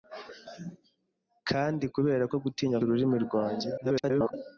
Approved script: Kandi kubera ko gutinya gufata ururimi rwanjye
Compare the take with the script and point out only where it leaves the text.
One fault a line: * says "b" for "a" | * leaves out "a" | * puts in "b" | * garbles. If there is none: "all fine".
* leaves out "gufata"
* garbles